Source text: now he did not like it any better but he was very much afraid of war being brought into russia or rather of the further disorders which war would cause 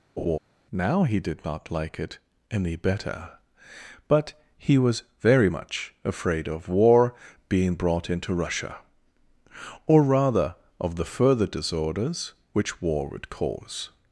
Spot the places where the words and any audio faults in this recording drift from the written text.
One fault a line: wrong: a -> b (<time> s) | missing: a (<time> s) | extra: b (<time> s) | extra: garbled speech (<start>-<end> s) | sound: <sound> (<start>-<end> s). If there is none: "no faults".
sound: laugh (0.2-0.4 s)